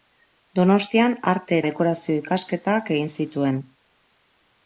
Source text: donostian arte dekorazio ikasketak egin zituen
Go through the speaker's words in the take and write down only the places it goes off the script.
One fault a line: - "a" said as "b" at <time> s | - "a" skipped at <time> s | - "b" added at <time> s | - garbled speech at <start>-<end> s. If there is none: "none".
none